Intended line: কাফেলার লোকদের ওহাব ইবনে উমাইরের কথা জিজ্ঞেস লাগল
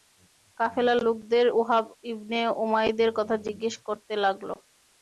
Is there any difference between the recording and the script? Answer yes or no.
yes